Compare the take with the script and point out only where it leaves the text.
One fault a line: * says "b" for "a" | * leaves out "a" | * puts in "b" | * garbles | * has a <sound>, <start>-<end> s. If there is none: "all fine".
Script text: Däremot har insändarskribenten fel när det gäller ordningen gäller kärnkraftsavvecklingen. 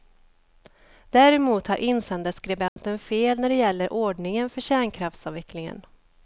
* has a dropout, 2.7-2.8 s
* says "för" for "gäller"